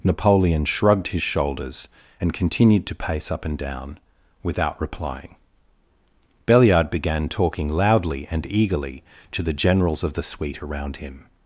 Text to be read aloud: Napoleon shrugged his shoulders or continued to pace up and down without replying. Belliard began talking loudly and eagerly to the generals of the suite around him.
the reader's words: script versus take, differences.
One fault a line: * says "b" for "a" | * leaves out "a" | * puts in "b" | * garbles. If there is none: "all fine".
* says "and" for "or"